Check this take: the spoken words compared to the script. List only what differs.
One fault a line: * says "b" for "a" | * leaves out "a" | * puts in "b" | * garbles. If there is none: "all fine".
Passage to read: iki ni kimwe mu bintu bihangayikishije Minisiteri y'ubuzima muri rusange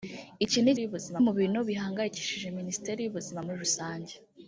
* says "y'ubuzima" for "kimwe"